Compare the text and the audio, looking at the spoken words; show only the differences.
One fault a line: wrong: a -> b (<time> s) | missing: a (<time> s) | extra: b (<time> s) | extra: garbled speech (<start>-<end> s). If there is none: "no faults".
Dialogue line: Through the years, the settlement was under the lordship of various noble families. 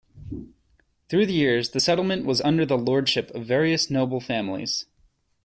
no faults